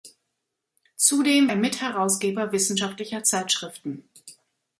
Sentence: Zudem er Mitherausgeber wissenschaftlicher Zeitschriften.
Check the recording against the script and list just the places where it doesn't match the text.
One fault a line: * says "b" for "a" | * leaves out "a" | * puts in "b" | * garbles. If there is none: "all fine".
all fine